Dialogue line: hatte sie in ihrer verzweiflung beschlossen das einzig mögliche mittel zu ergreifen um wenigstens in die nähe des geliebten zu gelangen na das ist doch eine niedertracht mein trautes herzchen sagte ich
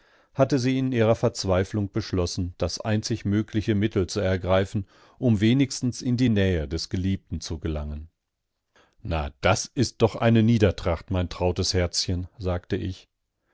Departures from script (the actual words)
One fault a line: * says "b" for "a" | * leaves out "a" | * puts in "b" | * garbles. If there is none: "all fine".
all fine